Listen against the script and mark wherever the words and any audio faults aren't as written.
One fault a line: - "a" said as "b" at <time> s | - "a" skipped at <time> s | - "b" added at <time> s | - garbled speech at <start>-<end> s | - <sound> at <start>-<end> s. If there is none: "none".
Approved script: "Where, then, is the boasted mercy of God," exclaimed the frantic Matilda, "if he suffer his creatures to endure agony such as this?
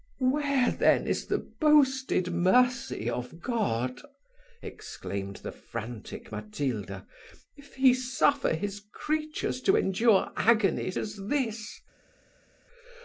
- "such" skipped at 10.9 s